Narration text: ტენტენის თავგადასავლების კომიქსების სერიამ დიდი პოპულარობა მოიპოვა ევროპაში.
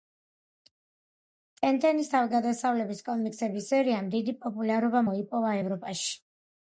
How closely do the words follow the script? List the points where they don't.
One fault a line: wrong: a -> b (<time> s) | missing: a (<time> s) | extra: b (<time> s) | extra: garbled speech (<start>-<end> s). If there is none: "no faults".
no faults